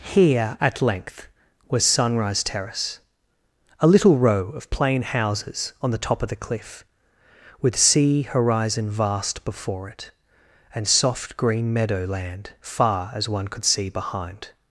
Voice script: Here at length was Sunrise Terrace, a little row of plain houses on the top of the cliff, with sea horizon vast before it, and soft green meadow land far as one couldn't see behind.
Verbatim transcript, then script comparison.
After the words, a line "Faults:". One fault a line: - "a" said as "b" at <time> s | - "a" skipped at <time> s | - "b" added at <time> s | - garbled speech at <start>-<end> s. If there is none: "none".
Here at length was Sunrise Terrace, a little row of plain houses on the top of the cliff, with sea horizon vast before it, and soft green meadow land far as one could see behind.
Faults:
- "couldn't" said as "could" at 13.5 s